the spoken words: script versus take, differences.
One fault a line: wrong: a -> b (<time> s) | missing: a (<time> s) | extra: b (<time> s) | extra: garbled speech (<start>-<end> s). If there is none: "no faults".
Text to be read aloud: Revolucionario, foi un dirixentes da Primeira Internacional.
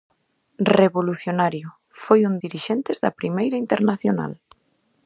no faults